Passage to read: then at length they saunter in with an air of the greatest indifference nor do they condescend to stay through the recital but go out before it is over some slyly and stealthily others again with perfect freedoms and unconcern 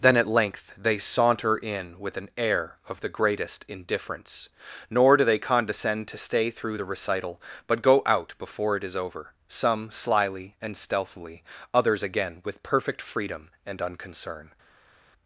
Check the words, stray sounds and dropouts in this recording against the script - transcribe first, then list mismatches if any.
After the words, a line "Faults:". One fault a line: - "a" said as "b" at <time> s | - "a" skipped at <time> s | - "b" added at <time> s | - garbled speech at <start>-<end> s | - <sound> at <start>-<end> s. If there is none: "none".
then at length they saunter in with an air of the greatest indifference nor do they condescend to stay through the recital but go out before it is over some slyly and stealthily others again with perfect freedom and unconcern
Faults:
- "freedoms" said as "freedom" at 13.0 s